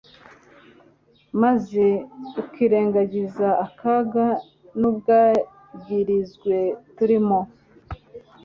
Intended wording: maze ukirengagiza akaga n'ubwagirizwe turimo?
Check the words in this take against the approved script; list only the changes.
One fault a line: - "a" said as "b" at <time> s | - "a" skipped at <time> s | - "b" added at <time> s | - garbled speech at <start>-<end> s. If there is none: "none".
none